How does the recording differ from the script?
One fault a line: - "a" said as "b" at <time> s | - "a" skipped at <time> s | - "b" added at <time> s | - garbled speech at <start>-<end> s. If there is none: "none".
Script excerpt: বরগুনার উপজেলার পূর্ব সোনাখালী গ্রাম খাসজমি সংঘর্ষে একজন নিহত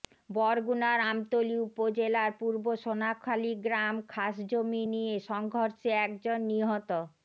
- "আমতলী" added at 1.0 s
- "নিয়ে" added at 4.9 s